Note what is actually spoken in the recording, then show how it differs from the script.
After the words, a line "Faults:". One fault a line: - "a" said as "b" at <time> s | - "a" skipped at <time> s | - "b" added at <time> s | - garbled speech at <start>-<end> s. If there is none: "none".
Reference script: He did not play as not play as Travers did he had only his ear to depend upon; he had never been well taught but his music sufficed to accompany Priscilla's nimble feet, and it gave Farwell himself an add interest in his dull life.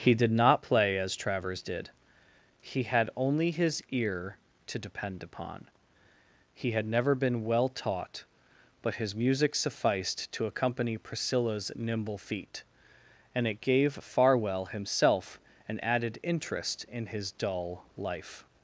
He did not play as Travers did he had only his ear to depend upon; he had never been well taught but his music sufficed to accompany Priscilla's nimble feet, and it gave Farwell himself an added interest in his dull life.
Faults:
- "not play as" skipped at 1.1 s
- "add" said as "added" at 15.8 s